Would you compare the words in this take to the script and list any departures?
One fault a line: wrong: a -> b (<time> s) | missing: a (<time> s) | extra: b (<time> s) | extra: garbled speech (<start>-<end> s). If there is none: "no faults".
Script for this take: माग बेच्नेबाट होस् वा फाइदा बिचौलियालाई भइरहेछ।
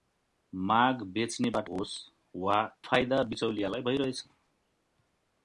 no faults